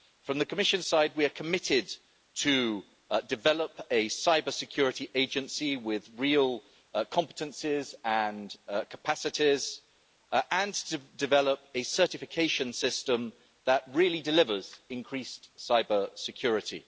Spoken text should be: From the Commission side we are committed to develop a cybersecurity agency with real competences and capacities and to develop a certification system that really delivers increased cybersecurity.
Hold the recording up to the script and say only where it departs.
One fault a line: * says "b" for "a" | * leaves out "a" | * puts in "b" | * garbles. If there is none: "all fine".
all fine